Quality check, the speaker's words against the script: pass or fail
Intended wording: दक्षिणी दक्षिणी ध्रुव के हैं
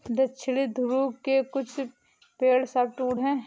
fail